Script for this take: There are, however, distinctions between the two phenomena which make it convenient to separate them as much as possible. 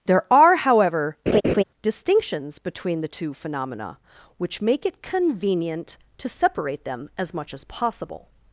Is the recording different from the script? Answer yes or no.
no